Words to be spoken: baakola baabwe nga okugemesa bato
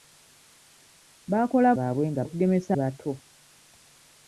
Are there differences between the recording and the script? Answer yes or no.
no